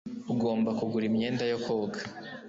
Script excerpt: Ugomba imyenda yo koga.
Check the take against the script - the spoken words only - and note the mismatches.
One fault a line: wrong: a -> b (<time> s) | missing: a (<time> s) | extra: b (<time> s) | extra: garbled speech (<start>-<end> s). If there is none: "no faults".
extra: kugura (0.8 s)